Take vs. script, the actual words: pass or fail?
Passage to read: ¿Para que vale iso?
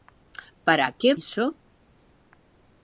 fail